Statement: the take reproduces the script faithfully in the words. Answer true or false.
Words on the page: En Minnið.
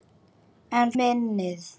true